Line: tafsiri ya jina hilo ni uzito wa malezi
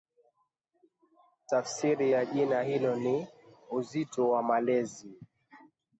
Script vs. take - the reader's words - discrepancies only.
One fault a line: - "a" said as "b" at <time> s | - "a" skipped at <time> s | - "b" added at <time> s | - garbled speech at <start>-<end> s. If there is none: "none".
none